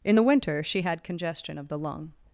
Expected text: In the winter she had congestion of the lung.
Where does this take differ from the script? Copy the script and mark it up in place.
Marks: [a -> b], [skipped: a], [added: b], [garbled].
In the winter she had congestion of the lung.